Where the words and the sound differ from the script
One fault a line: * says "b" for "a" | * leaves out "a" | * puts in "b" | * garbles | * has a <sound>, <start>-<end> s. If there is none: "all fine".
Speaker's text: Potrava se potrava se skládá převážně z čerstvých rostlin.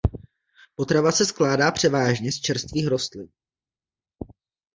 * leaves out "potrava se"